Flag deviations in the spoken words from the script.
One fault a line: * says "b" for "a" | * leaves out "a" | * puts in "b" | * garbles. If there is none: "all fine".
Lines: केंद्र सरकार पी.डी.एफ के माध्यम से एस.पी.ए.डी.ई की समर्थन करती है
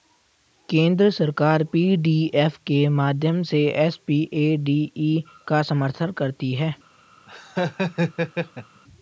* says "का" for "की"